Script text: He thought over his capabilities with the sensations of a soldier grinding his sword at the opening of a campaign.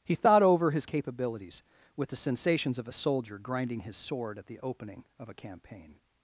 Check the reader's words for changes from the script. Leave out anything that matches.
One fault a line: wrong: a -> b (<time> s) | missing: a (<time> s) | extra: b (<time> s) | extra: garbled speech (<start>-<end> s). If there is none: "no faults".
no faults